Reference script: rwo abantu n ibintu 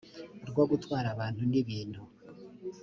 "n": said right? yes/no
yes